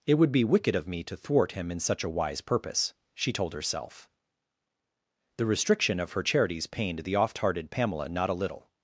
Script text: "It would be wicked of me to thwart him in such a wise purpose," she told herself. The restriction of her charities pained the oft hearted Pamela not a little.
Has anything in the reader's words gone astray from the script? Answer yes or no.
no